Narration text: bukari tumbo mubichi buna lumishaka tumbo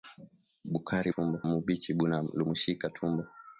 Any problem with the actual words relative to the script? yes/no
no